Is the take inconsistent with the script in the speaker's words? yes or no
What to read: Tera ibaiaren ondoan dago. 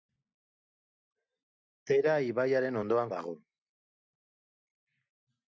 no